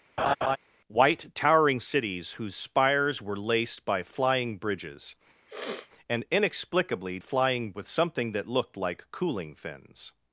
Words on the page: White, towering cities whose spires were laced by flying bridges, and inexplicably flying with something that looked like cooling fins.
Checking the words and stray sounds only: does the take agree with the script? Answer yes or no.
no